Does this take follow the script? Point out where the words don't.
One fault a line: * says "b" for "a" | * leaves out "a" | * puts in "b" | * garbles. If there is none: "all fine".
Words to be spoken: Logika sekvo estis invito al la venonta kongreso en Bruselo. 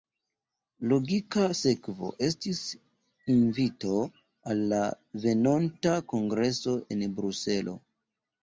all fine